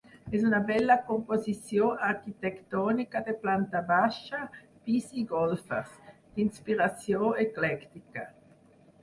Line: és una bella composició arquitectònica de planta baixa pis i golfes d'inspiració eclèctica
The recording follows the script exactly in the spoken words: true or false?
true